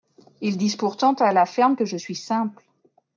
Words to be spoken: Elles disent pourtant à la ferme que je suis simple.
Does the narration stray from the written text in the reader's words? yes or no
yes